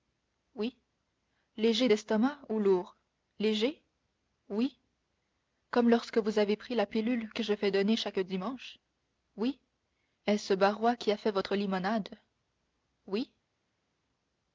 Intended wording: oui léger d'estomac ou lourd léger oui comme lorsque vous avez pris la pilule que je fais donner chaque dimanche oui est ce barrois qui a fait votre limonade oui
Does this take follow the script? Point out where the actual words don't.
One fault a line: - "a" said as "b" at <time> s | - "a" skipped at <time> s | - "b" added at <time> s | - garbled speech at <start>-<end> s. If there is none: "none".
none